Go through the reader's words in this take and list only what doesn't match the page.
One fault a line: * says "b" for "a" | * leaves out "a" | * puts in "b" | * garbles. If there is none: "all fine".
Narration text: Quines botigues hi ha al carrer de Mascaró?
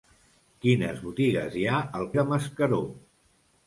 * leaves out "carrer"